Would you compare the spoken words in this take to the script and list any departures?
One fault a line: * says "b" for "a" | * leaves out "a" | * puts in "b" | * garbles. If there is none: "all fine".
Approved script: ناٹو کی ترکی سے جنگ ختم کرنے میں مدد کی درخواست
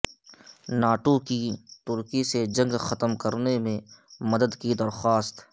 all fine